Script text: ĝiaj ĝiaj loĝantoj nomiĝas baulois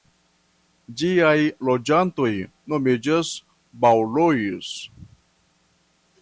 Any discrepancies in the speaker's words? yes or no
yes